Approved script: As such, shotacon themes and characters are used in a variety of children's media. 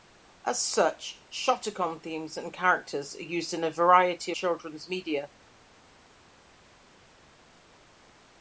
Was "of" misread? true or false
true